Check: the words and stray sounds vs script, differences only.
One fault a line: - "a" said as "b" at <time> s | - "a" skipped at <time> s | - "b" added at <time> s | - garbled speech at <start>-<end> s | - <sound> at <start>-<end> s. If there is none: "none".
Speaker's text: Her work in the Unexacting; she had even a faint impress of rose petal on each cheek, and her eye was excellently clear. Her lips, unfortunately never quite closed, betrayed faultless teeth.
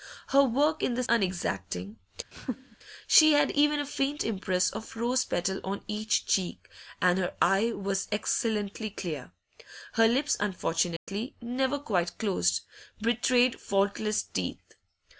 - laugh at 2.3-2.8 s
- dropout at 11.0-11.1 s